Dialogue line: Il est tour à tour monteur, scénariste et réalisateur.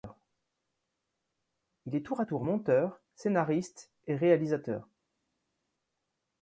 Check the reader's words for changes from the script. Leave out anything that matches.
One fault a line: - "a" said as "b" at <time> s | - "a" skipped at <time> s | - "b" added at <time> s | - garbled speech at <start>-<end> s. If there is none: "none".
none